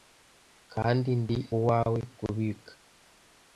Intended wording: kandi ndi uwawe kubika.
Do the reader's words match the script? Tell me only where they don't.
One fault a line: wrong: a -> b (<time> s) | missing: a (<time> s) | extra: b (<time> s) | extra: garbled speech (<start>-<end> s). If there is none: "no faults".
no faults